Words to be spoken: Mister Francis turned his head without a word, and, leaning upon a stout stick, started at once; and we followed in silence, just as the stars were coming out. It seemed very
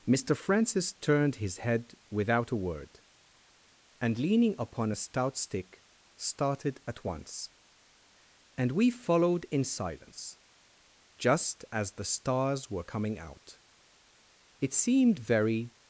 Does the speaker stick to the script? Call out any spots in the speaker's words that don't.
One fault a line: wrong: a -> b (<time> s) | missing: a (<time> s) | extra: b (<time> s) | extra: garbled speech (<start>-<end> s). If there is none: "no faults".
no faults